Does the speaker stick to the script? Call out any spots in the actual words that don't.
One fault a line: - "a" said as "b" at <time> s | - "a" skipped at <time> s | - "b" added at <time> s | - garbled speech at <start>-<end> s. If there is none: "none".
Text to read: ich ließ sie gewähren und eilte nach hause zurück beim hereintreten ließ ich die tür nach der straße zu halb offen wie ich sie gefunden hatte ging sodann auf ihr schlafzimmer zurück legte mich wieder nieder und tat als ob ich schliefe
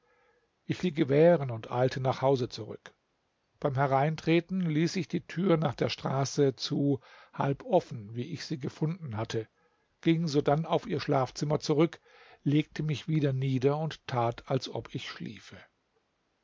- "ließ" skipped at 0.8 s